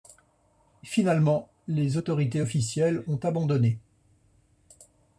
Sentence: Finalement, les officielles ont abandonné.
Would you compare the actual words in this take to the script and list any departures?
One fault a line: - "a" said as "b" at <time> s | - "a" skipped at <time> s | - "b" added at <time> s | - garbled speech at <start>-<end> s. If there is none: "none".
- "autorités" added at 1.9 s